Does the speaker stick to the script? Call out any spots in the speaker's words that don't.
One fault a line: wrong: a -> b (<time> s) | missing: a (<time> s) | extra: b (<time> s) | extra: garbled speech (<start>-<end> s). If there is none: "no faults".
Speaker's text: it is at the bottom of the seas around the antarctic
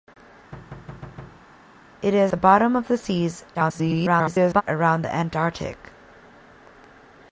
missing: at (2.3 s)
extra: garbled speech (3.5-4.6 s)